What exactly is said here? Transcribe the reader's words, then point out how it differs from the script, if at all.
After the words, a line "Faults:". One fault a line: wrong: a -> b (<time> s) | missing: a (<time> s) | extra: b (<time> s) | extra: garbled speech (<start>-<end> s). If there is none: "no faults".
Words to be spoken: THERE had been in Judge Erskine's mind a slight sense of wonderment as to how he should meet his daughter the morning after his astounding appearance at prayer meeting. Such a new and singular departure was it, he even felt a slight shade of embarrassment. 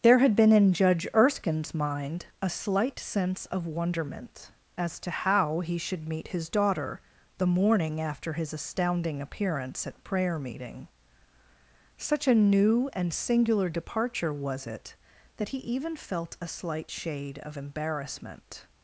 THERE had been in Judge Erskine's mind a slight sense of wonderment as to how he should meet his daughter the morning after his astounding appearance at prayer meeting. Such a new and singular departure was it, that he even felt a slight shade of embarrassment.
Faults:
extra: that (15.4 s)